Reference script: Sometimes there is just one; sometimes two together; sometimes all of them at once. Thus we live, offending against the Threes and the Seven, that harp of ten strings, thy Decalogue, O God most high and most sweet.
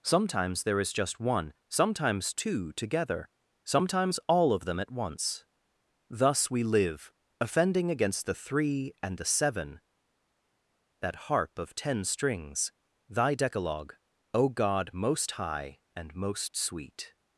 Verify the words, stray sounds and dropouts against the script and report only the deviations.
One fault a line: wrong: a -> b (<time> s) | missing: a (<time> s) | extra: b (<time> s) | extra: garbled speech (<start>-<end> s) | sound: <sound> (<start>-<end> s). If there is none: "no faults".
wrong: Threes -> Three (8.3 s)